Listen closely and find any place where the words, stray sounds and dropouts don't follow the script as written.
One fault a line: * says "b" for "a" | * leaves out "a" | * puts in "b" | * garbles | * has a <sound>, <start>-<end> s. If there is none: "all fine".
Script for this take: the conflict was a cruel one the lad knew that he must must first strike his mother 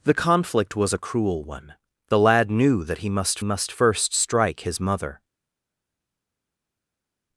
all fine